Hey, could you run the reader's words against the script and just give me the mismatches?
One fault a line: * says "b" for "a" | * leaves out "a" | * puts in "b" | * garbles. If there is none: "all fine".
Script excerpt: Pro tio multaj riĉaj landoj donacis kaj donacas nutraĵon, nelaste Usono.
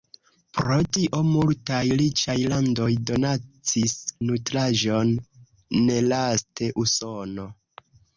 * leaves out "kaj donacas"